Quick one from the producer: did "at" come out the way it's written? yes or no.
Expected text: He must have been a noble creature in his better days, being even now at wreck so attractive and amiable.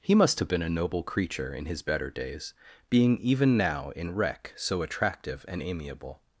no